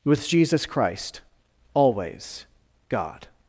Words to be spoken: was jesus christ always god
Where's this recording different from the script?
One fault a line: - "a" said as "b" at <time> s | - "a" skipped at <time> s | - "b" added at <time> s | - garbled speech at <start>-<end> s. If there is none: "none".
- "was" said as "with" at 0.0 s